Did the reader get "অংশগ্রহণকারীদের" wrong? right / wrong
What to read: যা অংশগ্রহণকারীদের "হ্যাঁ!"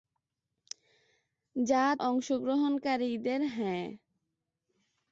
right